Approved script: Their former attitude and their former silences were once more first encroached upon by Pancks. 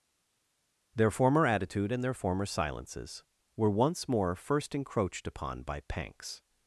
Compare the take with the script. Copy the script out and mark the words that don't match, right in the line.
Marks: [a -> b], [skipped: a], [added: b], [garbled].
Their former attitude and their former silences were once more first encroached upon by Pancks.